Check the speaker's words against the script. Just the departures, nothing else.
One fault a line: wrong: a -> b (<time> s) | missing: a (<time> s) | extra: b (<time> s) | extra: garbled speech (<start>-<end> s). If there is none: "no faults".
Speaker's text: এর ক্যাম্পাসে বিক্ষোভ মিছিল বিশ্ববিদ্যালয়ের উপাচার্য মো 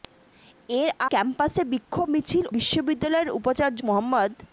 no faults